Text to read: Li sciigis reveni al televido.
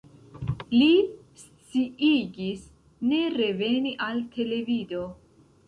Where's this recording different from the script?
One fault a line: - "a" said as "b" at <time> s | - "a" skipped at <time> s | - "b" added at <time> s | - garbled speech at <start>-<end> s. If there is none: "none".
- "ne" added at 3.1 s